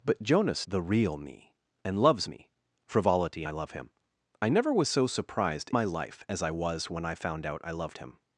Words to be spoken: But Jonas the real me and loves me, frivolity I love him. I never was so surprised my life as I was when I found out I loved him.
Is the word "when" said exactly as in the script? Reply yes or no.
yes